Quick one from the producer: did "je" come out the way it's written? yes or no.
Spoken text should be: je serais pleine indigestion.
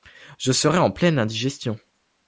yes